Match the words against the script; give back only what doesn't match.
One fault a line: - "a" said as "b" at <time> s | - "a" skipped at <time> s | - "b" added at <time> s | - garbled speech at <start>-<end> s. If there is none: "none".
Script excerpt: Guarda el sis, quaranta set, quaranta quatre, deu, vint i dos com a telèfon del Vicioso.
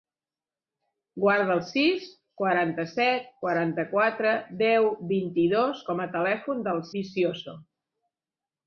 none